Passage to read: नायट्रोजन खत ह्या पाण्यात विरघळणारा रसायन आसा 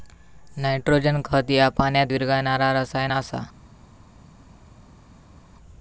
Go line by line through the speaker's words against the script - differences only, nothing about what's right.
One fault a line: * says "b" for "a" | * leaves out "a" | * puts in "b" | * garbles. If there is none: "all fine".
all fine